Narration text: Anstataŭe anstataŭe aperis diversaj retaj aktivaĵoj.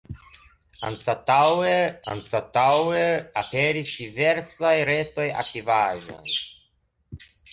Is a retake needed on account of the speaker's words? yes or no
no